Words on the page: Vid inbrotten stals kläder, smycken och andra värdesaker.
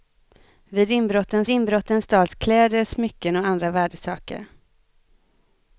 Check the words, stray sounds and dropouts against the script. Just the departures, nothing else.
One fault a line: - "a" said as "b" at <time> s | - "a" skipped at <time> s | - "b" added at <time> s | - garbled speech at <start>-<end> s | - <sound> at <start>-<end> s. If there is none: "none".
- "inbrotten" added at 1.5 s